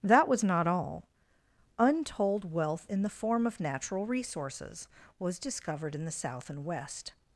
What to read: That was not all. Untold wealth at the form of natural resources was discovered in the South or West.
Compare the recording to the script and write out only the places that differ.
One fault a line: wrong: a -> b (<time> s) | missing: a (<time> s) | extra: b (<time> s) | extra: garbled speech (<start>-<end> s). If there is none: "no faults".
wrong: at -> in (2.9 s)
wrong: or -> and (6.5 s)